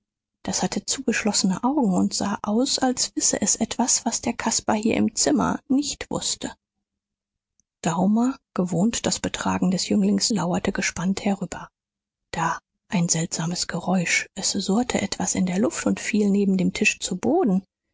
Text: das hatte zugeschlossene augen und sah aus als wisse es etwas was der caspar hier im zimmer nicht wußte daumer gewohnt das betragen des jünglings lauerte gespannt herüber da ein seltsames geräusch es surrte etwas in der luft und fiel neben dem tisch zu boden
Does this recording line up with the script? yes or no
yes